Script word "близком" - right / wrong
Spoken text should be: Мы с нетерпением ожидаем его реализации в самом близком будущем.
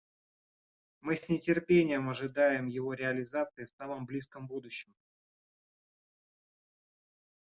right